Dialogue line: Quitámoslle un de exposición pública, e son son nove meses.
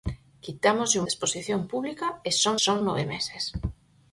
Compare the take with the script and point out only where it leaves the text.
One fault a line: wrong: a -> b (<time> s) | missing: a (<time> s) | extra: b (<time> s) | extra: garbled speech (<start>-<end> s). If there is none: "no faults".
no faults